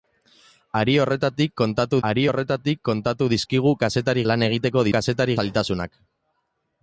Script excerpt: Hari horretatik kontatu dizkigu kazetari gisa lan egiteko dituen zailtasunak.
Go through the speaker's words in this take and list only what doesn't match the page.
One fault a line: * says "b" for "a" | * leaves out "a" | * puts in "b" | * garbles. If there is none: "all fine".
* puts in "hari horretatik kontatu"
* leaves out "gisa"
* says "kazetari" for "dituen"